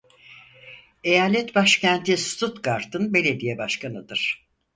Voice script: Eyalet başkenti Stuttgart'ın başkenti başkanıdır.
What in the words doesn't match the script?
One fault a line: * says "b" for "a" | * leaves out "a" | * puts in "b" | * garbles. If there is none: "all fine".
* says "belediye" for "başkenti"